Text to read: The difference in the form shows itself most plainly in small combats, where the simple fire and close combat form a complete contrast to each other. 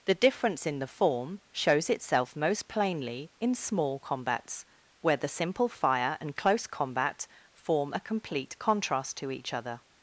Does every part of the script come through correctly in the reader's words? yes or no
yes